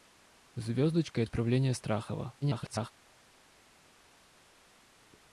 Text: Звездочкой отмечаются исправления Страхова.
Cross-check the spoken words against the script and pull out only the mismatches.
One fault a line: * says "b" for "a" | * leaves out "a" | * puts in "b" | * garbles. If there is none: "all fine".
* leaves out "отмечаются"
* garbles